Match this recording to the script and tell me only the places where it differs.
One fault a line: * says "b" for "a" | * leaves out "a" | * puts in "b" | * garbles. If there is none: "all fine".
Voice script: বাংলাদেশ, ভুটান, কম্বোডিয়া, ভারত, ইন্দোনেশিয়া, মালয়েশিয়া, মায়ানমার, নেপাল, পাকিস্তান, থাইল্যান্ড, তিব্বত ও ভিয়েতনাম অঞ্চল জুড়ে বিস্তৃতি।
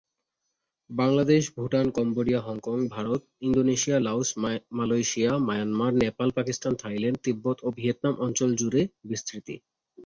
* puts in "হংকং"
* puts in "লাওস"